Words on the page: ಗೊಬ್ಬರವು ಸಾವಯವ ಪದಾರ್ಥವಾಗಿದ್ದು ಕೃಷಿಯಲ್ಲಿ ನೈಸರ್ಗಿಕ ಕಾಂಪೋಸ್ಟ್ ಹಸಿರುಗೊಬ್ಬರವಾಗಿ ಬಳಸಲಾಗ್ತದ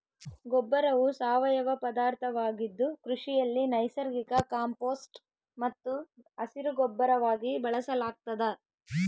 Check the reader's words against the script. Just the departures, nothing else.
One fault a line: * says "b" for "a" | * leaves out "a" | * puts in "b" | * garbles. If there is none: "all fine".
* puts in "ಮತ್ತು"